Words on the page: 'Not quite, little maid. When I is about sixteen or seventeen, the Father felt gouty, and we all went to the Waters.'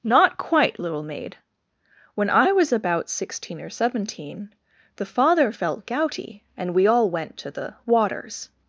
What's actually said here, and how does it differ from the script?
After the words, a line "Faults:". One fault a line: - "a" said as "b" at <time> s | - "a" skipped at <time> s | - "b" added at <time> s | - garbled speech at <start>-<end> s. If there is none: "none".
'Not quite, little maid. When I was about sixteen or seventeen, the Father felt gouty, and we all went to the Waters.'
Faults:
- "is" said as "was" at 2.5 s